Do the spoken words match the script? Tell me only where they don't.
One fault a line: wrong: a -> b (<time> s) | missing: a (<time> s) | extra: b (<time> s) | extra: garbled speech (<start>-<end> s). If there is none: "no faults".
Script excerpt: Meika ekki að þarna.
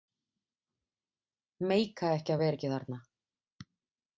extra: vera ekki (2.4 s)